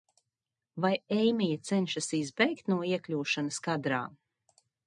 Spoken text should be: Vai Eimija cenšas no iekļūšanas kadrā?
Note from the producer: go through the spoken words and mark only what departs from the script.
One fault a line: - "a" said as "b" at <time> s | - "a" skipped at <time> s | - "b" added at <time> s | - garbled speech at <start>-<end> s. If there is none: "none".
- "izbēgt" added at 2.2 s